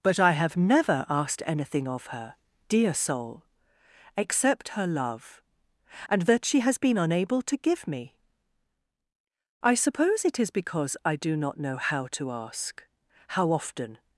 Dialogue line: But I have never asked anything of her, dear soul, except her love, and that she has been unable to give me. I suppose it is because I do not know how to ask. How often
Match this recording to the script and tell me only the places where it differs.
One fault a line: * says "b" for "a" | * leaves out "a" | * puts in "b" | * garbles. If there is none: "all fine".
all fine